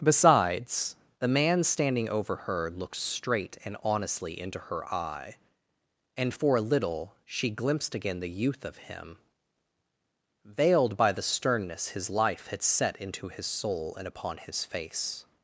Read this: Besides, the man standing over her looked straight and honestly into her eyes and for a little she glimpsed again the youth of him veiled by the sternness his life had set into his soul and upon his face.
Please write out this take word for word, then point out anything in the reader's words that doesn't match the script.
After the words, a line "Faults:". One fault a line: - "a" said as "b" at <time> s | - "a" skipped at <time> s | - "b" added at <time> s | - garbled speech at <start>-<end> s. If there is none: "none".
Besides, the man standing over her looked straight and honestly into her eye and for a little she glimpsed again the youth of him veiled by the sternness his life had set into his soul and upon his face.
Faults:
- "eyes" said as "eye" at 4.9 s